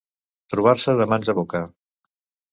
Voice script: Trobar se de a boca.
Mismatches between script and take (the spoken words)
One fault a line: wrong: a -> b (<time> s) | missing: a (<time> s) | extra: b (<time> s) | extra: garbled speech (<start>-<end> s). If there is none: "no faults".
extra: mans (1.1 s)